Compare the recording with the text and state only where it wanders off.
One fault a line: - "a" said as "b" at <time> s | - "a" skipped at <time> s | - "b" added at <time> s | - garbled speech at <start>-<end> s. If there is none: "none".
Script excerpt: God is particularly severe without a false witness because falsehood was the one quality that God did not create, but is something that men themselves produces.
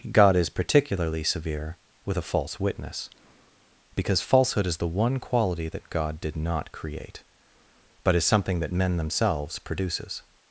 - "without" said as "with" at 2.0 s
- "was" said as "is" at 4.7 s